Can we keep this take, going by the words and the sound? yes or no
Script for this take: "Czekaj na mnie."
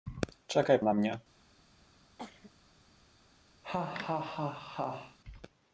no